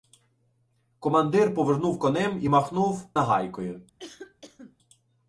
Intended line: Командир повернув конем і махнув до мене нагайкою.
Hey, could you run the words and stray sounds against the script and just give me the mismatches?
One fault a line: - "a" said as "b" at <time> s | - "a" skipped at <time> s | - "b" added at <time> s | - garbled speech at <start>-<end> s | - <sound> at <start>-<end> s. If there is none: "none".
- "до мене" skipped at 3.1 s
- cough at 4.0-4.8 s